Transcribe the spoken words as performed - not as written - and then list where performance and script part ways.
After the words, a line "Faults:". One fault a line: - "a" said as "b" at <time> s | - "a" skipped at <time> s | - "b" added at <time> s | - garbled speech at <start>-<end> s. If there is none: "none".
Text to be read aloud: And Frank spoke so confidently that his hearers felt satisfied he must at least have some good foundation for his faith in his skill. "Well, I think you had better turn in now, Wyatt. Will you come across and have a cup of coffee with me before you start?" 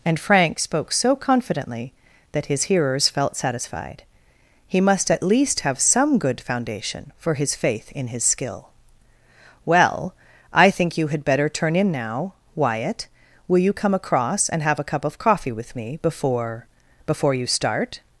And Frank spoke so confidently that his hearers felt satisfied he must at least have some good foundation for his faith in his skill. "Well, I think you had better turn in now, Wyatt. Will you come across and have a cup of coffee with me before before you start?"
Faults:
- "before" added at 17.1 s